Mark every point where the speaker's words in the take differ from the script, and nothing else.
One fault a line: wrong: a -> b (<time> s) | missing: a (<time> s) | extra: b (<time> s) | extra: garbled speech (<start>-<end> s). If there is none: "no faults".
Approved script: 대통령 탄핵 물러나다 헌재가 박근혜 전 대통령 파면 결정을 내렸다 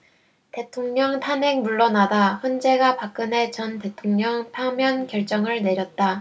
no faults